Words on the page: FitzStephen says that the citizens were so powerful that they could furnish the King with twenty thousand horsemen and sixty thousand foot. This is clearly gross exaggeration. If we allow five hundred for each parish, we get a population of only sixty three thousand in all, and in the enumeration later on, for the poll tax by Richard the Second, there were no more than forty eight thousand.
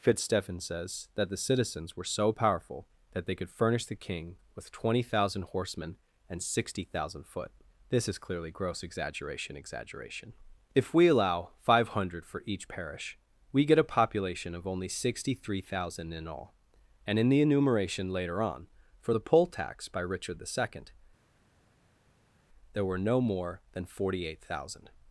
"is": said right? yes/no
yes